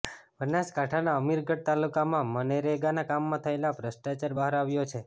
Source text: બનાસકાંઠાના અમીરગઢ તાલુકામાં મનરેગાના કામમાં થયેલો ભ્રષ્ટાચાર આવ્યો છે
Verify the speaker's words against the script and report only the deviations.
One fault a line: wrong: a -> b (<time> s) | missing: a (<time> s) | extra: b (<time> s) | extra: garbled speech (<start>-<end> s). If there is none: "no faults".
extra: બહાર (4.4 s)